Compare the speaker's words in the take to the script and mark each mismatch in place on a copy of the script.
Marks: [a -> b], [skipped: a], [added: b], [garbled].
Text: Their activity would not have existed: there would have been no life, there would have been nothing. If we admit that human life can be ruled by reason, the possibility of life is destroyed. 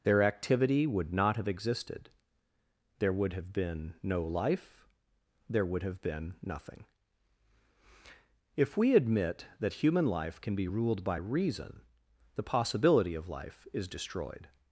Their activity would not have existed: there would have been no life, there would have been nothing. If we admit that human life can be ruled by reason, the possibility of life is destroyed.